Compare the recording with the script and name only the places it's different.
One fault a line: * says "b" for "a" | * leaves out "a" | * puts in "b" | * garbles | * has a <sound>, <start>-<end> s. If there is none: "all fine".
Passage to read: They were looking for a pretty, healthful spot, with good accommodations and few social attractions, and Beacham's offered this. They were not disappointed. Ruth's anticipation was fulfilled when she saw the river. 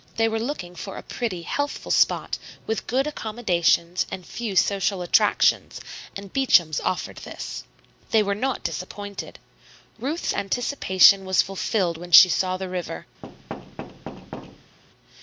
* has a thud, 13.2-14.8 s